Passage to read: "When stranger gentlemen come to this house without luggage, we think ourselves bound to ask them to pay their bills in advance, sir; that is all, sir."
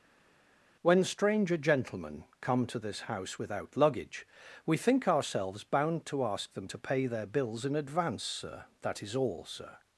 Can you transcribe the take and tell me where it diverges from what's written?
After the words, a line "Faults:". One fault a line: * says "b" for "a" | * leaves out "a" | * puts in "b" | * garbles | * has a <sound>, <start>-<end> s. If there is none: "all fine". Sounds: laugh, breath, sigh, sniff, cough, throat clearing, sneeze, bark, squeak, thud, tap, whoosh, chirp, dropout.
"When stranger gentlemen come to this house without luggage, we think ourselves bound to ask them to pay their bills in advance, sir; that is all, sir."
Faults:
all fine